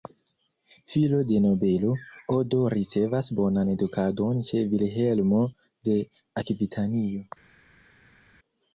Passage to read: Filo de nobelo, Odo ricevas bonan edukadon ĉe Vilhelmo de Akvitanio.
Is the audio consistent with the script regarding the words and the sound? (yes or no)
yes